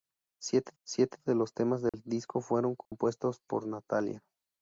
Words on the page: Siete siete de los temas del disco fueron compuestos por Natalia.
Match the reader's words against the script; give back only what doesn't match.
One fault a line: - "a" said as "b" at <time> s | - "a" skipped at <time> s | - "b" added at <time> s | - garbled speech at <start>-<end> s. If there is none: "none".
none